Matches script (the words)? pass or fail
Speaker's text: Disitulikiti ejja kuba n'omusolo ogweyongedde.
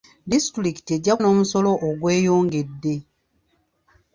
fail